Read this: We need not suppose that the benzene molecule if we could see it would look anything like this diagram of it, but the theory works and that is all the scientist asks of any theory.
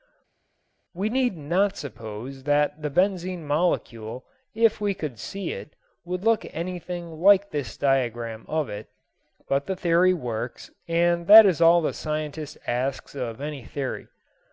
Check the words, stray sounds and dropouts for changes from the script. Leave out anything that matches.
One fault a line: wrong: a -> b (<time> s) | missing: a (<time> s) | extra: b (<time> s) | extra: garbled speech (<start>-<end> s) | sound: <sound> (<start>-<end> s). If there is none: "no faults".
no faults